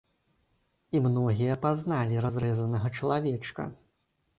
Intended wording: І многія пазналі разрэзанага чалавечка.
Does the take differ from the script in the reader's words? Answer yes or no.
no